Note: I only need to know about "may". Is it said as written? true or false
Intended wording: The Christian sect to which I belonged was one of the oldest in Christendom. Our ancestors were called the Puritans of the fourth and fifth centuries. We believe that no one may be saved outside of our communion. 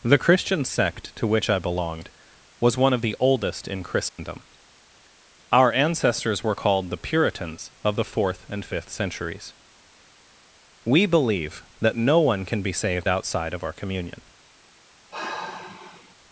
false